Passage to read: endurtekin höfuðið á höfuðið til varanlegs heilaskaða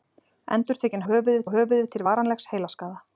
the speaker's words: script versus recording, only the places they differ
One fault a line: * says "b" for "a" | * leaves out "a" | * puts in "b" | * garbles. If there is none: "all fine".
all fine